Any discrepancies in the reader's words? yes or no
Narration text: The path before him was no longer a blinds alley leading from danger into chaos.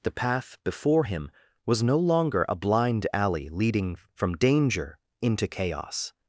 yes